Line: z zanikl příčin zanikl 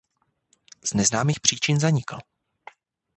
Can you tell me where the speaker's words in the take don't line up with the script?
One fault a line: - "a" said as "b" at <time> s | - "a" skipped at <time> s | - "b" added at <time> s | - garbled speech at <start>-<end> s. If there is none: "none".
- "zanikl" said as "neznámých" at 0.9 s